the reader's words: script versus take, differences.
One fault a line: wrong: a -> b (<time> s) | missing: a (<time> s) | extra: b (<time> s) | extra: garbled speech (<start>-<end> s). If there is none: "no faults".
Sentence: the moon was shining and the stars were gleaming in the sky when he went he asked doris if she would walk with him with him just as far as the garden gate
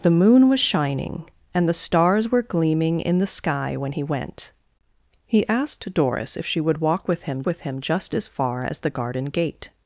no faults